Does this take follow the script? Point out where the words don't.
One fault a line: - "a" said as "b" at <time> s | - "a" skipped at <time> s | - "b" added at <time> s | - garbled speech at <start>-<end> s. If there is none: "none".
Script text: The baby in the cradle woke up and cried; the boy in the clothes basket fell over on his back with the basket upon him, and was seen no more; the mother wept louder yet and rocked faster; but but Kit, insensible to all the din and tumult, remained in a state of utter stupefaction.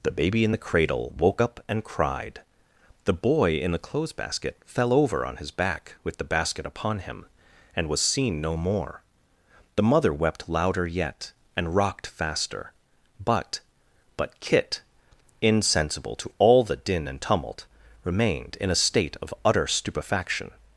none